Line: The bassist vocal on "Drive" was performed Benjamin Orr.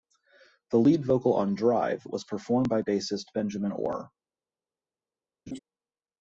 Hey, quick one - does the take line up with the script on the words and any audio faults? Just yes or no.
no